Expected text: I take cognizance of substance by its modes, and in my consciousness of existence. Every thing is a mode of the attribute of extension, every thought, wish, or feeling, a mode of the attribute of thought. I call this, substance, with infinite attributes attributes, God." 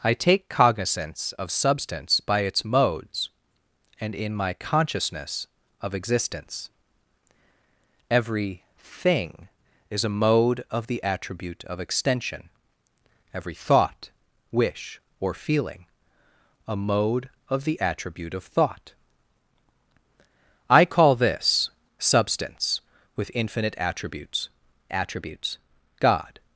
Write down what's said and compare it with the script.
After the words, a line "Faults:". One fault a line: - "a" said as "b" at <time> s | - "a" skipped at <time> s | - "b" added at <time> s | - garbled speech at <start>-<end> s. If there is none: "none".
I take cognizance of substance by its modes, and in my consciousness of existence. Every thing is a mode of the attribute of extension, every thought, wish, or feeling, a mode of the attribute of thought. I call this, substance, with infinite attributes attributes, God."
Faults:
none